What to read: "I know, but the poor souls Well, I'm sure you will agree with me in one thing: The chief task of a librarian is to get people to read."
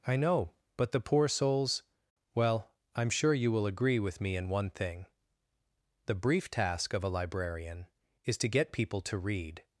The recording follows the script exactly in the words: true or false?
false